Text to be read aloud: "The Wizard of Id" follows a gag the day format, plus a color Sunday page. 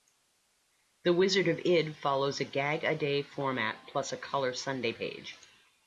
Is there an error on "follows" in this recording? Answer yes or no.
no